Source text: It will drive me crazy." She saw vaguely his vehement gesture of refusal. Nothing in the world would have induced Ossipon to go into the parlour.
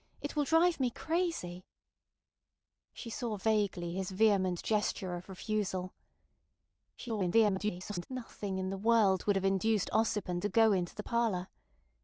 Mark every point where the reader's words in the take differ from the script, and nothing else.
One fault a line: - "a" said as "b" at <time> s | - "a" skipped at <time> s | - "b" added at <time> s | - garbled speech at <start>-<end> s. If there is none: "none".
- garbled speech at 7.0-8.1 s